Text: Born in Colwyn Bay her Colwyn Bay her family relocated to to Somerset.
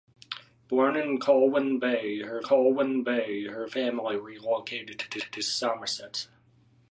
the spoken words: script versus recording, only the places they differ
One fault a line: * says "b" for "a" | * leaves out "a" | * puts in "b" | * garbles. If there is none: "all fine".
all fine